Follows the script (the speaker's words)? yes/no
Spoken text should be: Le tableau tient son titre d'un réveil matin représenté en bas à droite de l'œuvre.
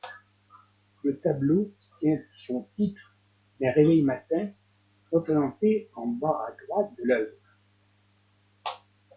yes